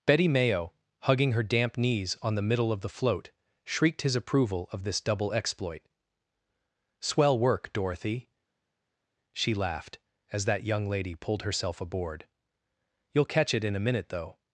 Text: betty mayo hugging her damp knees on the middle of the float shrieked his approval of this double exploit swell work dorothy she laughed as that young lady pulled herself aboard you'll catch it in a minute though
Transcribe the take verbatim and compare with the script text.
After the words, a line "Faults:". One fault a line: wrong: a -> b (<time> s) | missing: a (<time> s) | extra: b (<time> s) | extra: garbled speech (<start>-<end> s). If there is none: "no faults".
betty mayo hugging her damp knees on the middle of the float shrieked his approval of this double exploit swell work dorothy she laughed as that young lady pulled herself aboard you'll catch it in a minute though
Faults:
no faults